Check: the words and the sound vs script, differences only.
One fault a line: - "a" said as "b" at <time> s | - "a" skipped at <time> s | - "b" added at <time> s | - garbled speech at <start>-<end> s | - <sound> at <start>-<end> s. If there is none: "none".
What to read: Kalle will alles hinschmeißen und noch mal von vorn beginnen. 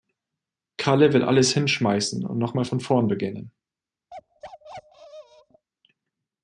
- bark at 4.1-5.7 s